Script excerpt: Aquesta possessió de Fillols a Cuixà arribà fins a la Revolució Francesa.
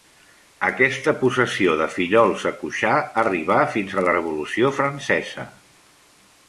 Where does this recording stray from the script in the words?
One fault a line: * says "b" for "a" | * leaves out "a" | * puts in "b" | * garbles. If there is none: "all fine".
* leaves out "la"